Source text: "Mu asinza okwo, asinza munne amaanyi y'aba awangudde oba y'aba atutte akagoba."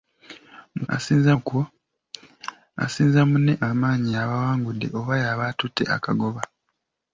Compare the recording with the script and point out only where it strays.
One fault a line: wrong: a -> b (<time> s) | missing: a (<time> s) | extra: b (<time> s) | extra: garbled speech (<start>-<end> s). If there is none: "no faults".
no faults